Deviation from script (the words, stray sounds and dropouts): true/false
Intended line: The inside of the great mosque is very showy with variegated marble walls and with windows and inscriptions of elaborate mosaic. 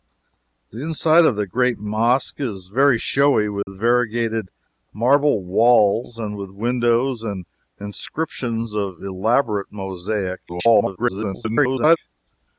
true